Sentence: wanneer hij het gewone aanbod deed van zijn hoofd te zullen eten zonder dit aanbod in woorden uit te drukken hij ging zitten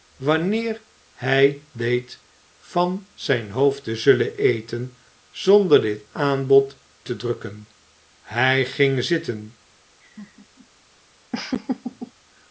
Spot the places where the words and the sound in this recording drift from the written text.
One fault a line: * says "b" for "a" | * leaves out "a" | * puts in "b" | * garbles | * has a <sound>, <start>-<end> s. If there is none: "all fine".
* leaves out "het gewone aanbod"
* leaves out "in woorden uit"
* has a laugh, 10.0-10.7 s
* has a laugh, 11.3-12.1 s